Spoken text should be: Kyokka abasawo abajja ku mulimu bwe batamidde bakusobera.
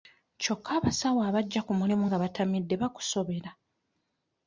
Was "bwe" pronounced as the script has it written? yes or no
no